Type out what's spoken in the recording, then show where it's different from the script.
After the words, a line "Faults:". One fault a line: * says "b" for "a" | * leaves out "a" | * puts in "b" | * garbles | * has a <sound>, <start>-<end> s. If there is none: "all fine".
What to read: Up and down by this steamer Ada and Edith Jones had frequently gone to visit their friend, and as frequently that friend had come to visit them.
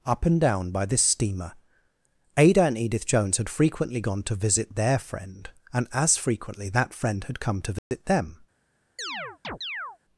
Up and down by this steamer Ada and Edith Jones had frequently gone to visit their friend, and as frequently that friend had come to visit them.
Faults:
* has a dropout, 7.8-7.9 s
* has a chirp, 9.0-10.0 s